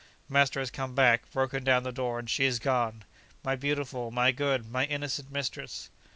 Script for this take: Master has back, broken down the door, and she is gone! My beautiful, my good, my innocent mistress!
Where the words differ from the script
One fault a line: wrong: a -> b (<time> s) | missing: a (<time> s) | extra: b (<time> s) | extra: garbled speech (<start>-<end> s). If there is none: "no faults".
extra: come (0.7 s)